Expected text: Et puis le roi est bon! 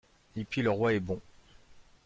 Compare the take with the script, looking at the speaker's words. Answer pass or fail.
pass